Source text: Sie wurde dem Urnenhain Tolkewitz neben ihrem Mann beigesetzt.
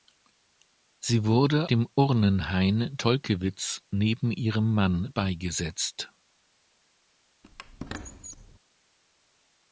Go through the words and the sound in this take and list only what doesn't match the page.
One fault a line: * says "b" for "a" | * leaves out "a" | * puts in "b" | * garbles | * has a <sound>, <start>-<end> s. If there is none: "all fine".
* has a squeak, 7.4-8.6 s